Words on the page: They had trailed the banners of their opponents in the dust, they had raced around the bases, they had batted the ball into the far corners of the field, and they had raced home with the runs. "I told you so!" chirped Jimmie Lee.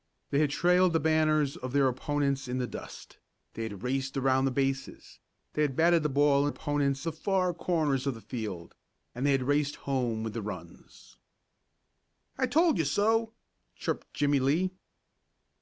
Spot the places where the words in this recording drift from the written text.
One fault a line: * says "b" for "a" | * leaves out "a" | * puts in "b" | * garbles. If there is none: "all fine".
* says "opponents" for "into"